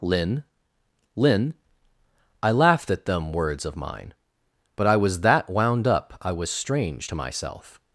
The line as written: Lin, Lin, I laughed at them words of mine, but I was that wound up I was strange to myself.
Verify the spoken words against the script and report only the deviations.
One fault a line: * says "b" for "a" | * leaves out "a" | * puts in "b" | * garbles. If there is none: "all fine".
all fine